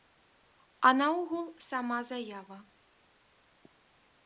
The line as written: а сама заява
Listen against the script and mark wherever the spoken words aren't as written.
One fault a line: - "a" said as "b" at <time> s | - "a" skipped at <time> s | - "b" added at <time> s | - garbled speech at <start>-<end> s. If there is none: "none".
- "наогул" added at 1.0 s